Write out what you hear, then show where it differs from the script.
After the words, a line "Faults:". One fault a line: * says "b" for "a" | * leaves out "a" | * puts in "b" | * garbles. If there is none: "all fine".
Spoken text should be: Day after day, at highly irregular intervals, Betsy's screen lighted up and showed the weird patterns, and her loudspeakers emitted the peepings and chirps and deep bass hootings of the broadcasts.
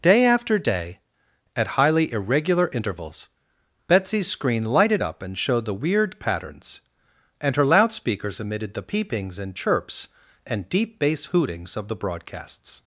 Day after day, at highly irregular intervals, Betsy's screen lighted up and showed the weird patterns, and her loudspeakers emitted the peepings and chirps and deep bass hootings of the broadcasts.
Faults:
all fine